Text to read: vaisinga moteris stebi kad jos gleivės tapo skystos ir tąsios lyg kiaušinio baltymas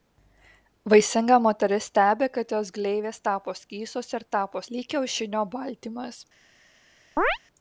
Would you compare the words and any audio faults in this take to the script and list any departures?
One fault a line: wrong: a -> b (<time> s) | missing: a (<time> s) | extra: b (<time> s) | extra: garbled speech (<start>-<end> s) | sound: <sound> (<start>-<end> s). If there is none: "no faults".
wrong: tąsios -> tapo (4.4 s)
sound: chirp (7.2-7.4 s)